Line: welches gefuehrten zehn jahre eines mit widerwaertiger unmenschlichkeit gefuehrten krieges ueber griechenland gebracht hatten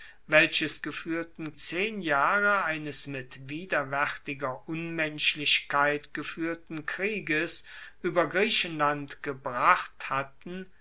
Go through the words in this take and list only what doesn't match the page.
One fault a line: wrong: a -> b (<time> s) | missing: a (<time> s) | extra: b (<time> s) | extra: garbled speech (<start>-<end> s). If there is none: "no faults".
no faults